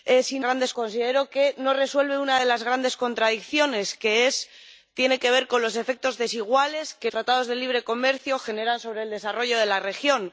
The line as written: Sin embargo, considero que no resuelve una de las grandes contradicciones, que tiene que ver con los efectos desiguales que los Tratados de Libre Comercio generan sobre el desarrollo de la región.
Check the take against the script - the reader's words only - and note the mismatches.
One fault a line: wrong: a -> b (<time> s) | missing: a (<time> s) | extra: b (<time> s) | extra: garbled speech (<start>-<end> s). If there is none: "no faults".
wrong: embargo -> grandes (0.4 s)
missing: los (7.1 s)